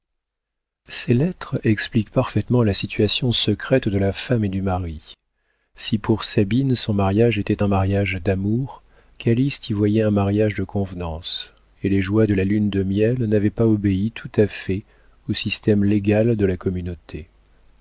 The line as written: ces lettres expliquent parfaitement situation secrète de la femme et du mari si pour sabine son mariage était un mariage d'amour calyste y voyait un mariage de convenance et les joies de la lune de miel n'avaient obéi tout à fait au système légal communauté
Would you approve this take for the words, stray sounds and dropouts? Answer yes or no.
no